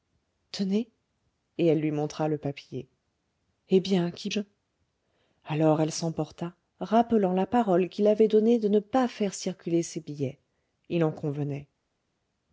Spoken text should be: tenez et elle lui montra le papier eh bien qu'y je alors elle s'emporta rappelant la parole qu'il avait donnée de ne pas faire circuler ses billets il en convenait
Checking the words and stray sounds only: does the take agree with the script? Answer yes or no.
yes